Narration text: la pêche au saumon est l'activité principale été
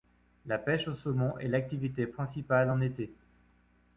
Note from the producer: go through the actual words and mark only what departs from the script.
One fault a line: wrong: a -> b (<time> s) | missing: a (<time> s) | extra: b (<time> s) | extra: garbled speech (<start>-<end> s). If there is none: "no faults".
extra: en (2.7 s)